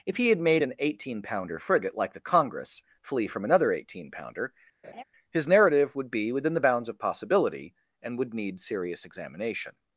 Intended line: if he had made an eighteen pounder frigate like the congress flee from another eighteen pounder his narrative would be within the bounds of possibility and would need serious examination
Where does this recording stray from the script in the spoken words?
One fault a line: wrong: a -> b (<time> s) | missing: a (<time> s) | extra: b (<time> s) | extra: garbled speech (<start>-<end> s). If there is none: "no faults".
no faults